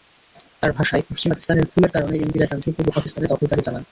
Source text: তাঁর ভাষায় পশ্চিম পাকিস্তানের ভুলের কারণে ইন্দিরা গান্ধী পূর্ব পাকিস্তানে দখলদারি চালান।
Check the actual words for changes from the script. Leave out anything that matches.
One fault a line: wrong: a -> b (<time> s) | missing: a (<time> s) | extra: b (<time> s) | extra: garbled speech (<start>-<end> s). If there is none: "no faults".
no faults